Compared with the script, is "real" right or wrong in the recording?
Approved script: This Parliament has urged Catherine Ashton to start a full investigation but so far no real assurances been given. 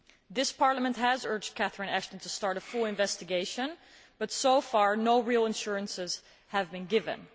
right